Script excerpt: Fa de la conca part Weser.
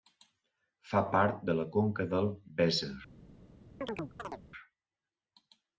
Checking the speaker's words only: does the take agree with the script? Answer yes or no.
no